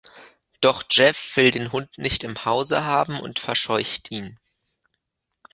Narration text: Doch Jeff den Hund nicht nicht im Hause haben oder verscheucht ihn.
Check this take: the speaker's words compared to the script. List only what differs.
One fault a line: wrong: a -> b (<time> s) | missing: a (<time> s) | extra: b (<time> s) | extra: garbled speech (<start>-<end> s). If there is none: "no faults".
extra: will (1.4 s)
missing: nicht (2.2 s)
wrong: oder -> und (3.2 s)